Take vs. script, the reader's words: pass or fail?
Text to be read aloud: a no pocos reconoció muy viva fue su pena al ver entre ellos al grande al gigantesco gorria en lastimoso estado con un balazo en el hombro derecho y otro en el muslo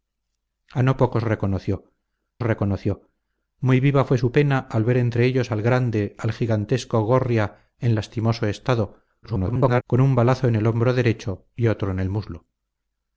fail